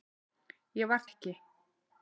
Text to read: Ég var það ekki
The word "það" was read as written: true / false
false